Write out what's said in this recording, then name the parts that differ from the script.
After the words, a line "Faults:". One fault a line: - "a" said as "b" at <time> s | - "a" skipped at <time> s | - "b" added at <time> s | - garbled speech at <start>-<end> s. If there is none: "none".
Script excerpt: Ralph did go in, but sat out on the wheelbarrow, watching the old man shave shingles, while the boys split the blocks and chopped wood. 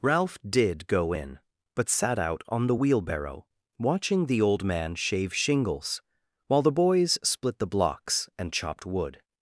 Ralph did go in, but sat out on the wheelbarrow, watching the old man shave shingles, while the boys split the blocks and chopped wood.
Faults:
none